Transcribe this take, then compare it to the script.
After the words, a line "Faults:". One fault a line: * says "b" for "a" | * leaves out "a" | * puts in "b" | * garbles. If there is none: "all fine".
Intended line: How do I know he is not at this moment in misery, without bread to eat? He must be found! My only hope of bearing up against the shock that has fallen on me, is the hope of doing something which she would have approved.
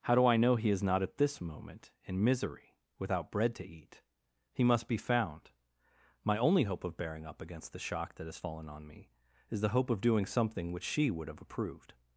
How do I know he is not at this moment in misery, without bread to eat? He must be found! My only hope of bearing up against the shock that has fallen on me, is the hope of doing something which she would have approved.
Faults:
all fine